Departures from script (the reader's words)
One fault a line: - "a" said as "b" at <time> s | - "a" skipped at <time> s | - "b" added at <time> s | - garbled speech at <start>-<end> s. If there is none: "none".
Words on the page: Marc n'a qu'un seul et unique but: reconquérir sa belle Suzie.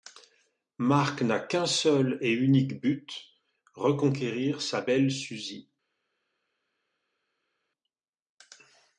none